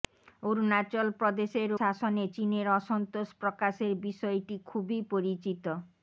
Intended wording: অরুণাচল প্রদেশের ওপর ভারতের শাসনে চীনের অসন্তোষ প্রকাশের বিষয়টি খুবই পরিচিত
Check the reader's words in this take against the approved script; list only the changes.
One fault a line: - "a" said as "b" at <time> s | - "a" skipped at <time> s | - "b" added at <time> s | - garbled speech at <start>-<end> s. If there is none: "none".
- "ওপর ভারতের" skipped at 1.7 s